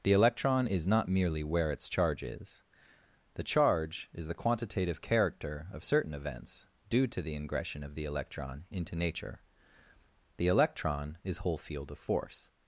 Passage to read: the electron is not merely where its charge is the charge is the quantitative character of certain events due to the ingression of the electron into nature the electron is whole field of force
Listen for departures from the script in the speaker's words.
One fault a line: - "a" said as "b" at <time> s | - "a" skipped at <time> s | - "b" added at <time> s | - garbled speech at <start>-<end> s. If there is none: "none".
none